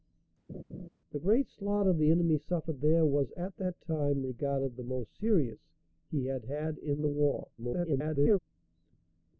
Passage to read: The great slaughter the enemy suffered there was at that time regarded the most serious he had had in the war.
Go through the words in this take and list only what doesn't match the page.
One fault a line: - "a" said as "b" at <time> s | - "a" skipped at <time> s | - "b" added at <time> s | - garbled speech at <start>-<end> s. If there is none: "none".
- garbled speech at 7.6-8.4 s